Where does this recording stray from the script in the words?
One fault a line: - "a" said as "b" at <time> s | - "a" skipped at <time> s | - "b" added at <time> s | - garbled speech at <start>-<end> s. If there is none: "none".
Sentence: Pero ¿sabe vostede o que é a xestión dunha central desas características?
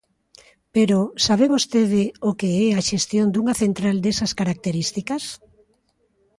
none